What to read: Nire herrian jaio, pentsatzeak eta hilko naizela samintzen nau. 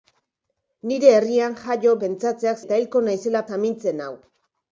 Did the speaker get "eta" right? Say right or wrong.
right